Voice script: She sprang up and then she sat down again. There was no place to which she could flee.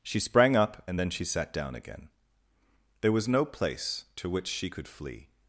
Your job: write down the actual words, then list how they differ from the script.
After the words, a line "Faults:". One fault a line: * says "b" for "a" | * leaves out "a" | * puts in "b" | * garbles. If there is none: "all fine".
She sprang up and then she sat down again. There was no place to which she could flee.
Faults:
all fine